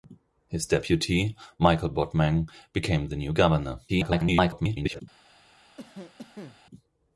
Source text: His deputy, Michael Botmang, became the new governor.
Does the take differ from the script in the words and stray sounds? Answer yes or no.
yes